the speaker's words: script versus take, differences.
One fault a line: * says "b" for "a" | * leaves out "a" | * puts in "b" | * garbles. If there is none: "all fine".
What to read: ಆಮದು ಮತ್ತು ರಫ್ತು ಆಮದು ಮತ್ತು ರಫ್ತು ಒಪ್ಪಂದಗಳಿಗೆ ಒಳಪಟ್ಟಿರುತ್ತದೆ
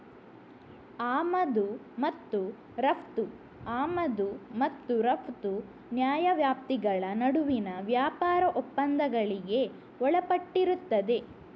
* puts in "ನ್ಯಾಯವ್ಯಾಪ್ತಿಗಳ ನಡುವಿನ ವ್ಯಾಪಾರ"